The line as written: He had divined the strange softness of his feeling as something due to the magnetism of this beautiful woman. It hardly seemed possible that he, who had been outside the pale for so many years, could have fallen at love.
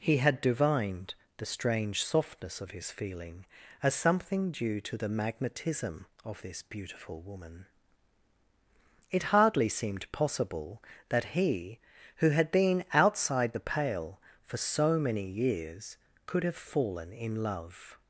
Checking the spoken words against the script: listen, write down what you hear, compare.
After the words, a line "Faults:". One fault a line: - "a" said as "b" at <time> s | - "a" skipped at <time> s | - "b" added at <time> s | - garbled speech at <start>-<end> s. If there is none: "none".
He had divined the strange softness of his feeling as something due to the magnetism of this beautiful woman. It hardly seemed possible that he, who had been outside the pale for so many years, could have fallen in love.
Faults:
- "at" said as "in" at 17.1 s